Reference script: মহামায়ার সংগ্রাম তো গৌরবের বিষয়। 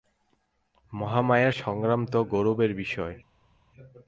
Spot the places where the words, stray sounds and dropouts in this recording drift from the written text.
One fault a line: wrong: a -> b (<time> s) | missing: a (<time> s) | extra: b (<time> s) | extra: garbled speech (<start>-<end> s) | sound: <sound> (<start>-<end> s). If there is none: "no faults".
no faults